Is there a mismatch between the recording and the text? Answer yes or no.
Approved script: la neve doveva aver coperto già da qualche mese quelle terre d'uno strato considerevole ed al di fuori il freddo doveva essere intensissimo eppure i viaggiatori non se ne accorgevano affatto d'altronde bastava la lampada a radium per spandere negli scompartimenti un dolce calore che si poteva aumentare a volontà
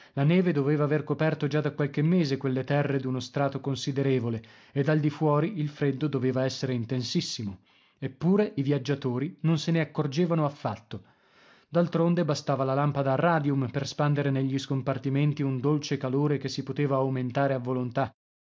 no